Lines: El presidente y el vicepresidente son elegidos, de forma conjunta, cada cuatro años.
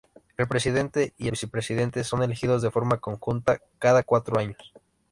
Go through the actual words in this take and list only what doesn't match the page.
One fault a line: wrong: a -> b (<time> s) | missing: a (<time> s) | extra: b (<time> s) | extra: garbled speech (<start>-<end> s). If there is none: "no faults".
missing: el (1.3 s)